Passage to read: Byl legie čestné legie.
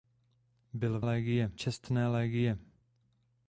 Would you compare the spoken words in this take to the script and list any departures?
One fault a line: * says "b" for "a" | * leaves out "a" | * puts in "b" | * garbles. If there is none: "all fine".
all fine